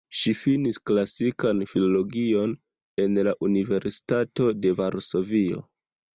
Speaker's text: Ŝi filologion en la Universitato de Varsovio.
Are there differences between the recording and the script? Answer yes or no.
yes